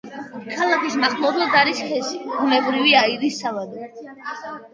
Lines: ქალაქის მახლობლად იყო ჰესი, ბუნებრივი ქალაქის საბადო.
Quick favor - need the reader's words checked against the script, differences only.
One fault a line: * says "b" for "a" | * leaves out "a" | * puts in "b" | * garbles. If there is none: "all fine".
* says "არის" for "იყო"
* says "აირის" for "ქალაქის"